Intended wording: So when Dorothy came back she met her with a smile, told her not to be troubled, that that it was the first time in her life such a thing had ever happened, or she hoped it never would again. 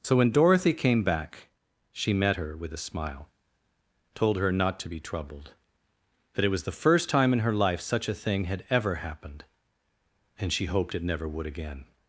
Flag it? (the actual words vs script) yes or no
yes